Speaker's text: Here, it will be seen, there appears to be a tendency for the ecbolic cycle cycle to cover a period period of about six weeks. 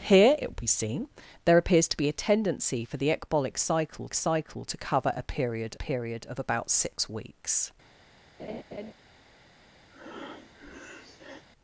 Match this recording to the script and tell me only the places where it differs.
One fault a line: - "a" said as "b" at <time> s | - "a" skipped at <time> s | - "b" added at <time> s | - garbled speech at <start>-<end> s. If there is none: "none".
none